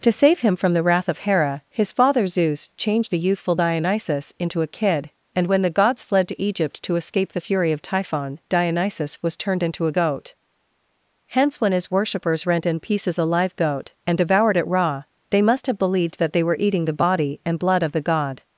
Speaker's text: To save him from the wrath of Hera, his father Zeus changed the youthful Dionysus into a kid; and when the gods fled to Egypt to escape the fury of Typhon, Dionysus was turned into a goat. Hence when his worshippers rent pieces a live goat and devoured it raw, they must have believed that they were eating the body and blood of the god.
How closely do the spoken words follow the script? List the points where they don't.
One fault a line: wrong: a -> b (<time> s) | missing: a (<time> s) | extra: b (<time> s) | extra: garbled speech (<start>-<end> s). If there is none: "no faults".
extra: in (12.7 s)